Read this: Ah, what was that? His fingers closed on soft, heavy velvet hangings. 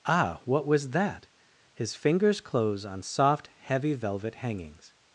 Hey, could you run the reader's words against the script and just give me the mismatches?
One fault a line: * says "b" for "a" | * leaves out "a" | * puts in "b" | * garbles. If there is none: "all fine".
* says "close" for "closed"